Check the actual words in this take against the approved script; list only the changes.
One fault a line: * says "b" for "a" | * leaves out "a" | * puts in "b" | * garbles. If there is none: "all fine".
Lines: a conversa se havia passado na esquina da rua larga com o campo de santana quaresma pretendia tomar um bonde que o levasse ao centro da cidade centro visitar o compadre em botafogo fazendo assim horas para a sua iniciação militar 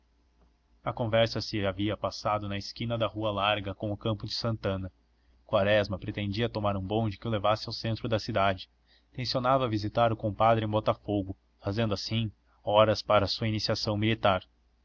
* says "tencionava" for "centro"